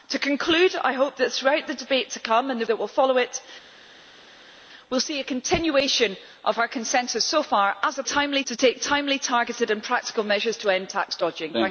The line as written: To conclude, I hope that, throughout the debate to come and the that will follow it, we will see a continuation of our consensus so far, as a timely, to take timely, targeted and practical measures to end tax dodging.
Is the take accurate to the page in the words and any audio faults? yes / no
yes